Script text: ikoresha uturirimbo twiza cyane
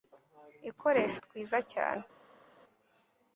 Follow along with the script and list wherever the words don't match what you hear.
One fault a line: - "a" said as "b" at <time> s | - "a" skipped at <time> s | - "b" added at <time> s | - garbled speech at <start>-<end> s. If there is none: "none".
- "uturirimbo" skipped at 1.2 s